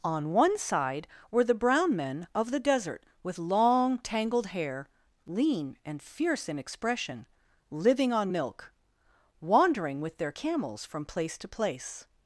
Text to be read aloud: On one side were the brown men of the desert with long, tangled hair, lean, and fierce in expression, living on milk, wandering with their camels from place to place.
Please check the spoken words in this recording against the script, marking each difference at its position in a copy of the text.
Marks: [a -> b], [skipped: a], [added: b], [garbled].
On one side were the brown men of the desert with long, tangled hair, lean, and fierce in expression, living on milk, wandering with their camels from place to place.